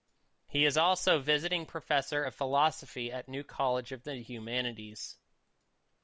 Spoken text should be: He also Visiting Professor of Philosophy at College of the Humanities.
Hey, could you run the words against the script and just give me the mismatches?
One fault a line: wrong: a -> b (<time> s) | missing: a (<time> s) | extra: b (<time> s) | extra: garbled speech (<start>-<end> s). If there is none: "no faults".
extra: is (0.7 s)
extra: New (3.3 s)